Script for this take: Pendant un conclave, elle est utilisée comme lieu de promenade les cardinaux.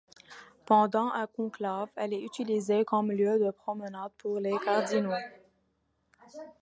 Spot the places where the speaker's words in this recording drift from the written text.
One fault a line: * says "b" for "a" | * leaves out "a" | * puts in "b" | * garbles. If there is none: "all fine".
* puts in "pour"